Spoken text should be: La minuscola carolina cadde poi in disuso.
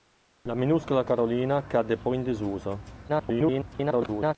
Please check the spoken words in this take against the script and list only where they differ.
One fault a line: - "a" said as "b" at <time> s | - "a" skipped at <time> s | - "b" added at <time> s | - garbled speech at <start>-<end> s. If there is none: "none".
- garbled speech at 3.1-4.3 s